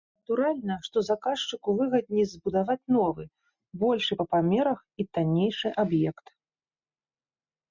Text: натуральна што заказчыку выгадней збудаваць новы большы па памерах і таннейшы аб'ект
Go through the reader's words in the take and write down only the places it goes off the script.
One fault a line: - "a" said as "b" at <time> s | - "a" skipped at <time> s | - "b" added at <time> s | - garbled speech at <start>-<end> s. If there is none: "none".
none